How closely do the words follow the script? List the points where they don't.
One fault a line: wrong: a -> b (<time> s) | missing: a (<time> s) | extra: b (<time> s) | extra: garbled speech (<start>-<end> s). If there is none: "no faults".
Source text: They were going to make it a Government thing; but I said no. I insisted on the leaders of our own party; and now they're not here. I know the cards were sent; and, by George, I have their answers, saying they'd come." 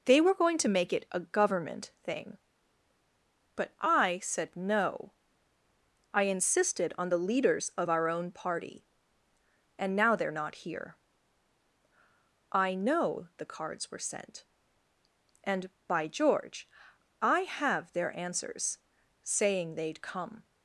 no faults